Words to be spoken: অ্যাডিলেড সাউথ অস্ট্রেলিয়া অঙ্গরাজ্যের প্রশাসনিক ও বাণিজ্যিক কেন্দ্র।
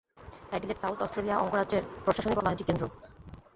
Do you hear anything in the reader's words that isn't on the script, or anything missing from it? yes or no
no